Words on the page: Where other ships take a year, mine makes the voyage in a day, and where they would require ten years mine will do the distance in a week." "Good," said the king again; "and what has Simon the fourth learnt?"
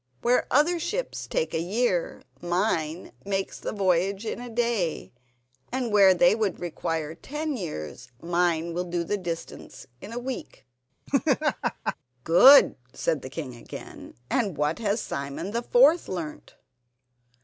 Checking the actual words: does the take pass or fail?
pass